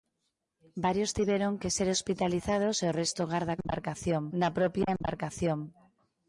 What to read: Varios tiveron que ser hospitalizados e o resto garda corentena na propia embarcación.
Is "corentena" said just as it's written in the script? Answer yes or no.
no